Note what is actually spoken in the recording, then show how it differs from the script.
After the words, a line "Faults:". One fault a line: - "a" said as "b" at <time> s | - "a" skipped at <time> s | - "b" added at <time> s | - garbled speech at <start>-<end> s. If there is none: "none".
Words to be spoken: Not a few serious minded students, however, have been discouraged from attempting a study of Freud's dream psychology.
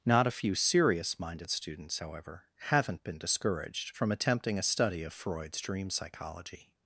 Not a few serious minded students, however, haven't been discouraged from attempting a study of Freud's dream psychology.
Faults:
- "have" said as "haven't" at 2.7 s